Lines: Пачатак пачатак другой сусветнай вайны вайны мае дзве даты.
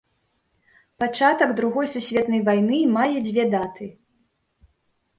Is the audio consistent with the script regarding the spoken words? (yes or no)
no